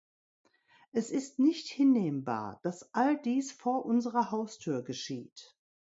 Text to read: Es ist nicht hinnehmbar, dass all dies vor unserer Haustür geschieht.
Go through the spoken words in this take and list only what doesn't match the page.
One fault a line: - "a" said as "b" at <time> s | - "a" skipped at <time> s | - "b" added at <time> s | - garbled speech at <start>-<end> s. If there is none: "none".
none